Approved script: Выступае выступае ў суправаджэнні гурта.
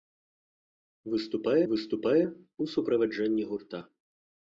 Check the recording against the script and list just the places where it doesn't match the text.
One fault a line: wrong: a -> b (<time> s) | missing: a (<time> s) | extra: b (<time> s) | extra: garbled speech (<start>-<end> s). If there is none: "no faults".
no faults